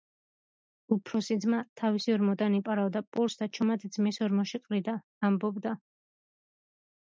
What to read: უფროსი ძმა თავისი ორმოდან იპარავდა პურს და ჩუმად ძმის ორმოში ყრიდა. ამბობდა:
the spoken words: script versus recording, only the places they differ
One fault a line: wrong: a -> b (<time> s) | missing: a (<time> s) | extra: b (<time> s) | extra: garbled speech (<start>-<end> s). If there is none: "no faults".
no faults